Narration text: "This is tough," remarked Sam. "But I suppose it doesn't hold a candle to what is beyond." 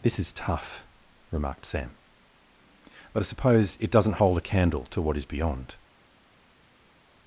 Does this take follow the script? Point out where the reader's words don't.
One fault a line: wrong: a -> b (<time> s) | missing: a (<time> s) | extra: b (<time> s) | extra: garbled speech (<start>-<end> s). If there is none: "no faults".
no faults